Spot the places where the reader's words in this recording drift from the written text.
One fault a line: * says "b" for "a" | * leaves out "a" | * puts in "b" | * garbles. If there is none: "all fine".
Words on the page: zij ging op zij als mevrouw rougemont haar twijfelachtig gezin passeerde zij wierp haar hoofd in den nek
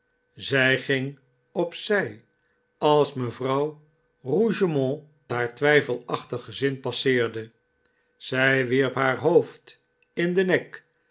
all fine